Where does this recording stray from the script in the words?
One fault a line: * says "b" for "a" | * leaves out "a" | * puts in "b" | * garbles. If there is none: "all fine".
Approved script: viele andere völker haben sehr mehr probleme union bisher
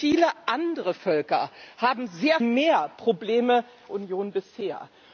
all fine